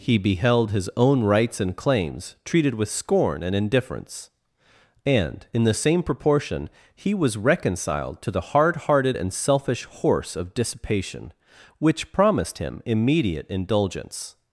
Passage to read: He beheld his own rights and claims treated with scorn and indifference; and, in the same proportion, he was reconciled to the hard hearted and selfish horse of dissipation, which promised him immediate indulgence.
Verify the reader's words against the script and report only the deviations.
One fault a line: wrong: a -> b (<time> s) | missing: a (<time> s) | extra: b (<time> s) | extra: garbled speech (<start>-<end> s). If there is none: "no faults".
no faults